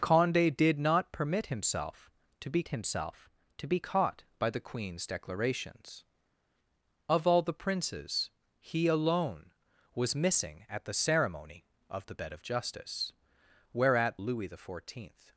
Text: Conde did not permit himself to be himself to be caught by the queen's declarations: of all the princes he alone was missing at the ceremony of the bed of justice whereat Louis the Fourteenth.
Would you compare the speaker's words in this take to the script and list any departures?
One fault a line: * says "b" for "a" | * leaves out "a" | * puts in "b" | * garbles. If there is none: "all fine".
all fine